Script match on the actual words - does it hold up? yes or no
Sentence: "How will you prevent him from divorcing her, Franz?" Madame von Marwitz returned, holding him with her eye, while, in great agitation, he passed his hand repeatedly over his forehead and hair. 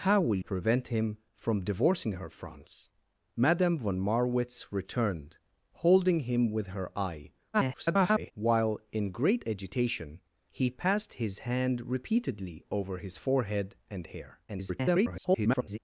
no